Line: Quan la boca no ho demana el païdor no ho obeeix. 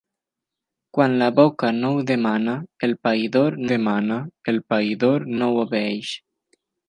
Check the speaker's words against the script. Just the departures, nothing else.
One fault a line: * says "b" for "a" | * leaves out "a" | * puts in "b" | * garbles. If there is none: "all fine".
* puts in "demana el païdor"